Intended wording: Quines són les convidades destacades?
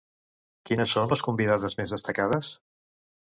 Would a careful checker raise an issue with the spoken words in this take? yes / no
yes